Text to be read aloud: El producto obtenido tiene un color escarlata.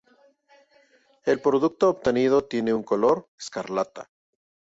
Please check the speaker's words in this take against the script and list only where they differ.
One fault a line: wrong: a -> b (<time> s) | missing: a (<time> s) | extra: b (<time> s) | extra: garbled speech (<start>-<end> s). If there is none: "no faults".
no faults